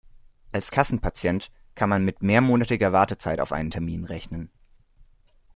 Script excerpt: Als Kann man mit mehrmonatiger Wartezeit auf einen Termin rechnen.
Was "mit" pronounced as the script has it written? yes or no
yes